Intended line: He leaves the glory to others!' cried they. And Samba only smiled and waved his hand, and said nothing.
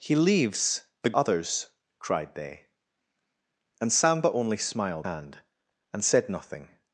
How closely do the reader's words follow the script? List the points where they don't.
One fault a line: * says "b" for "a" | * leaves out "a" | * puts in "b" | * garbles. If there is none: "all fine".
* leaves out "glory to"
* leaves out "and waved his"